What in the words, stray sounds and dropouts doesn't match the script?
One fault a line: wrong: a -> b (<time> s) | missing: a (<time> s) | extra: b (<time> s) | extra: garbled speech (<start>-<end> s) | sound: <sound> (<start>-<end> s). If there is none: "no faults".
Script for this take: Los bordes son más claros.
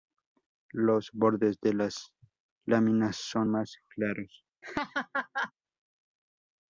extra: de las láminas (1.6 s)
sound: laugh (4.6-5.5 s)